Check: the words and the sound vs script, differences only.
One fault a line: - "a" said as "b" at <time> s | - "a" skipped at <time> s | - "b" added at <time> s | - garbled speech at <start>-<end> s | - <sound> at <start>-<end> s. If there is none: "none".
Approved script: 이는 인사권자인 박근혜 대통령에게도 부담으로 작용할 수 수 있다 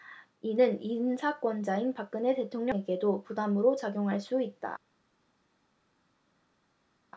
- "수" skipped at 4.4 s